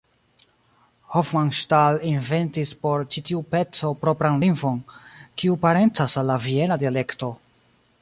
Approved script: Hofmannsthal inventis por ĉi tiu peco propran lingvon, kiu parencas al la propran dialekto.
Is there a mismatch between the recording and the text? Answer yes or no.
yes